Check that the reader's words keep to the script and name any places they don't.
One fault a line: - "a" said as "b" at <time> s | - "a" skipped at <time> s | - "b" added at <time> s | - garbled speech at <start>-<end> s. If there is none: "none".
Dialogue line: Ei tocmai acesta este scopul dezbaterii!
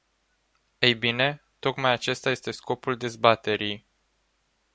- "bine" added at 0.9 s